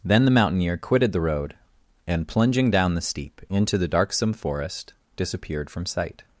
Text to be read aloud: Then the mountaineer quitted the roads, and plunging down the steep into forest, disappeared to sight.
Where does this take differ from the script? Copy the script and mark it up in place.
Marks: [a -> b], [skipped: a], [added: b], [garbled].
Then the mountaineer quitted the [roads, -> road] and plunging down the steep into [added: the darksome] forest, disappeared [to -> from] sight.